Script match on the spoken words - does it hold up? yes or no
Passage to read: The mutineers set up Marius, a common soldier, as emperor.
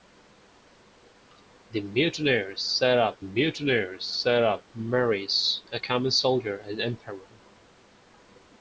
no